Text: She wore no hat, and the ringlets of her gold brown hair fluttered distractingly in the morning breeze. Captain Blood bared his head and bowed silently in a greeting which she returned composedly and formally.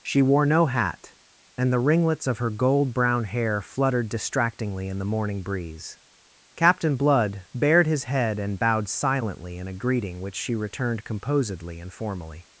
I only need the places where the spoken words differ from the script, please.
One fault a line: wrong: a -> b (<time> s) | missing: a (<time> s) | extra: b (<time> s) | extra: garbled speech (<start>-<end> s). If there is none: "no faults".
no faults